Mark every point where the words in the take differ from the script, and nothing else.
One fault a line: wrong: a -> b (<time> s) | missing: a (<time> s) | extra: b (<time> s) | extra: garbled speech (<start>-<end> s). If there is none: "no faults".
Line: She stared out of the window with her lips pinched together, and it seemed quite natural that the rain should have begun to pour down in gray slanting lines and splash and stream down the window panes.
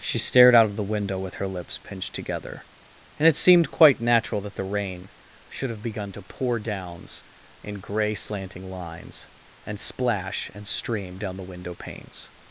wrong: down -> downs (6.6 s)